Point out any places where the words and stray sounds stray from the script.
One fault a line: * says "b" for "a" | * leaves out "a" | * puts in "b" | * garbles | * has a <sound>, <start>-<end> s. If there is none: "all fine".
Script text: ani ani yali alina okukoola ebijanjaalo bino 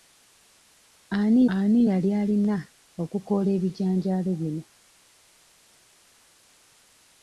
all fine